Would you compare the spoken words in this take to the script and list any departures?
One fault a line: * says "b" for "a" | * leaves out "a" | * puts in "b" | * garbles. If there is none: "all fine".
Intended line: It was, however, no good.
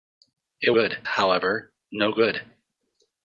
* says "good" for "was"